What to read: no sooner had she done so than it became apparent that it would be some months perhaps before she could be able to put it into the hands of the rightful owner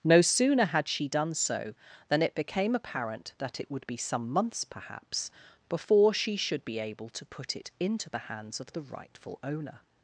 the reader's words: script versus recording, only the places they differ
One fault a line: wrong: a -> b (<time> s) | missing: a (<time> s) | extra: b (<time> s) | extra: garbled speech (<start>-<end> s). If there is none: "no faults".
wrong: could -> should (6.4 s)